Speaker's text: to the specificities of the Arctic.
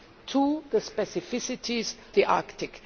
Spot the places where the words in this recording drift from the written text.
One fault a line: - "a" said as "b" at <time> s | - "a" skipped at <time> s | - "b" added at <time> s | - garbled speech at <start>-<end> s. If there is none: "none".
- "of" skipped at 1.9 s